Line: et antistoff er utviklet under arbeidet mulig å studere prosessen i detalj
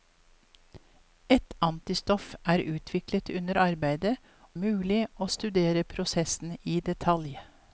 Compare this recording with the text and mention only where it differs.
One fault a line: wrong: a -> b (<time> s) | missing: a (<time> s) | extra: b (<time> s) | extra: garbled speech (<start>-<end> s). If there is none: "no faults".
no faults